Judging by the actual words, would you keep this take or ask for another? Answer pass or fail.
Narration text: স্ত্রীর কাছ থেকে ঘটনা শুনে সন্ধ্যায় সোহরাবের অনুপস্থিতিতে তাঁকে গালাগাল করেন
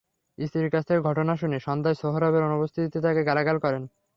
pass